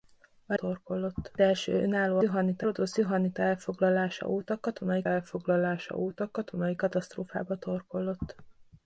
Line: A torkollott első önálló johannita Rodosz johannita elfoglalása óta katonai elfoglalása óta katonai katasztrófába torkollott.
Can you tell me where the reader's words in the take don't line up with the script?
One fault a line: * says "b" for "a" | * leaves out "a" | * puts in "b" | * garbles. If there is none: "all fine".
all fine